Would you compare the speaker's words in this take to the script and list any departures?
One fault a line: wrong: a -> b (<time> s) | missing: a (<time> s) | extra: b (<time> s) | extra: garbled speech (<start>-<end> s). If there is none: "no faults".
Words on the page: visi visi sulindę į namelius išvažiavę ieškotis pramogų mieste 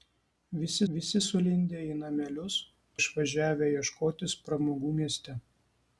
no faults